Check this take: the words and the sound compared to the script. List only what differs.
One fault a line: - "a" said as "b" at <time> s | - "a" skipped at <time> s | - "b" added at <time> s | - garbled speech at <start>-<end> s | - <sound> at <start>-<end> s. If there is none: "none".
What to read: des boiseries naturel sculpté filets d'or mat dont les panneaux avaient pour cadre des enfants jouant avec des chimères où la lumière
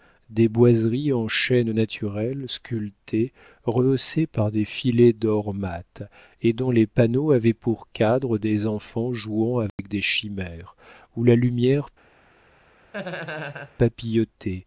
- "en chêne" added at 1.1 s
- "rehaussées par des" added at 3.6 s
- "et" added at 6.4 s
- dropout at 9.7-9.8 s
- laugh at 12.9-13.7 s